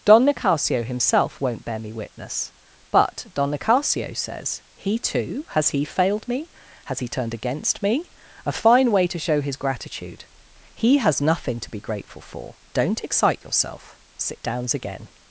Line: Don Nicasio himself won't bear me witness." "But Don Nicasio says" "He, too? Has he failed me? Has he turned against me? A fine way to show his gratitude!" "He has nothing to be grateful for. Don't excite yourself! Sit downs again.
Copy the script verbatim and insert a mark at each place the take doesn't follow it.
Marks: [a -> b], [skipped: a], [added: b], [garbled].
Don Nicasio himself won't bear me witness." "But Don Nicasio says" "He, too? Has he failed me? Has he turned against me? A fine way to show his gratitude!" "He has nothing to be grateful for. Don't excite yourself! Sit downs again.